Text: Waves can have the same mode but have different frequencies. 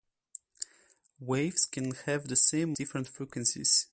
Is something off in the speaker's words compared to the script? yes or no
yes